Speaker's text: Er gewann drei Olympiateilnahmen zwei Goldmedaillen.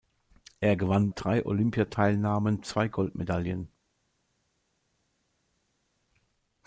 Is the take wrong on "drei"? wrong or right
right